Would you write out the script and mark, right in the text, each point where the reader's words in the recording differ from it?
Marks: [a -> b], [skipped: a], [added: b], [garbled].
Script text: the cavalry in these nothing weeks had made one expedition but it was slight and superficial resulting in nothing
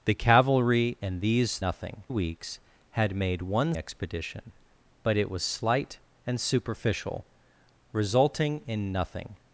the cavalry in these nothing weeks had made one expedition but it was slight and superficial resulting in nothing